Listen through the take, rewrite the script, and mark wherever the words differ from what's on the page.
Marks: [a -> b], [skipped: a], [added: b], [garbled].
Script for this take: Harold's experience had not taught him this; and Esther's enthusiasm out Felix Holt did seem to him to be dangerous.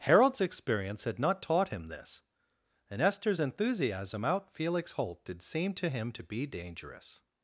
Harold's experience had not taught him this; and Esther's enthusiasm out Felix Holt did seem to him to be dangerous.